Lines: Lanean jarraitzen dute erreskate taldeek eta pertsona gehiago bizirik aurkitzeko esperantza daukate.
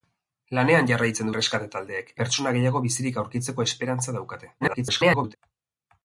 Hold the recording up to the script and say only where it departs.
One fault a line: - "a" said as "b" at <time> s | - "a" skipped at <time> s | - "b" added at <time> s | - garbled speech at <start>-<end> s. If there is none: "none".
- "dute" skipped at 1.3 s
- "eta" skipped at 2.1 s
- garbled speech at 4.6-5.4 s